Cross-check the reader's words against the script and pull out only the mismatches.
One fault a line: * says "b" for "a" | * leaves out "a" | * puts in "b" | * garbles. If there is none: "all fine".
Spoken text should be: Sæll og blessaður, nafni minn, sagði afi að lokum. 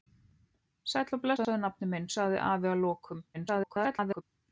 * garbles